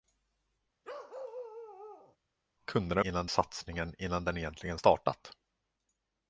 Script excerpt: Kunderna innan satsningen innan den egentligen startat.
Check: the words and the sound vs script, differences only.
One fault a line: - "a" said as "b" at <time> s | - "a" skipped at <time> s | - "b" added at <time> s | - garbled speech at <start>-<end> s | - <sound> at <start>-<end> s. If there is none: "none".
- bark at 0.8-2.2 s